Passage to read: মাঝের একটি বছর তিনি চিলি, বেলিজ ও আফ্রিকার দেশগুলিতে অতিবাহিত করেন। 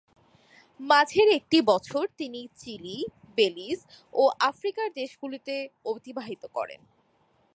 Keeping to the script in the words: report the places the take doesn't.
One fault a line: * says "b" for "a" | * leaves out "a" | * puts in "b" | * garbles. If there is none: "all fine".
all fine